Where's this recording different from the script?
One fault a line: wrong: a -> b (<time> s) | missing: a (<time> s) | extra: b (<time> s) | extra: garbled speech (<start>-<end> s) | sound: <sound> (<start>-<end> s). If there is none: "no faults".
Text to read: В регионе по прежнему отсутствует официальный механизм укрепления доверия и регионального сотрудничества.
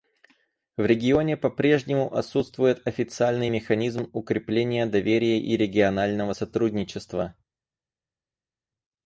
no faults